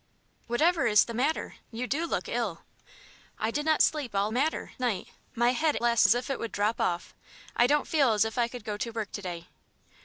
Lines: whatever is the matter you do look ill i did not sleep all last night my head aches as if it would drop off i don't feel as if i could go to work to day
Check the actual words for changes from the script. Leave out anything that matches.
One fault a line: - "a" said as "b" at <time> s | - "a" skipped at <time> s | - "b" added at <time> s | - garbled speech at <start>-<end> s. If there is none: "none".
- "last" said as "matter" at 4.3 s
- "aches" said as "last" at 5.8 s